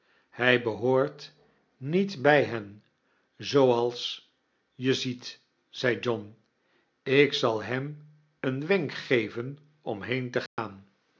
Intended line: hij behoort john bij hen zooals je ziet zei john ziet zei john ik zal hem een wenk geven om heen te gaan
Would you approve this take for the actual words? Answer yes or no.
no